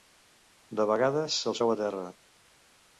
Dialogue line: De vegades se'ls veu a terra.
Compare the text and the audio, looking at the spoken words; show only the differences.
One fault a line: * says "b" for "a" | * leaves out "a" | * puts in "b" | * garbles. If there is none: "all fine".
all fine